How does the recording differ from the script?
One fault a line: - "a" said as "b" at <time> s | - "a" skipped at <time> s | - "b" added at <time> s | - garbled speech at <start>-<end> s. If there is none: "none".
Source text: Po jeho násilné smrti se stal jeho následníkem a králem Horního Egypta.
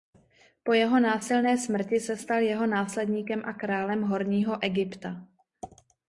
none